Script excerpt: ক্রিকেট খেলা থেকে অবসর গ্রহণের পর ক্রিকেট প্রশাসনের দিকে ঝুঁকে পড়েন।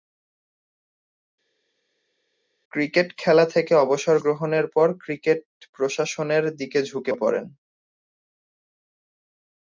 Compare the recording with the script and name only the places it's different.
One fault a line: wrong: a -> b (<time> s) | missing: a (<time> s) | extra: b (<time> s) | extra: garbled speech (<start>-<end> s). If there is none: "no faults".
no faults